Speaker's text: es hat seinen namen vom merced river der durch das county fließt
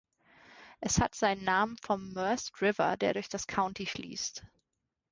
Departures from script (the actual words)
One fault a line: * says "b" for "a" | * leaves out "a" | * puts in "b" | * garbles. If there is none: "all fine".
all fine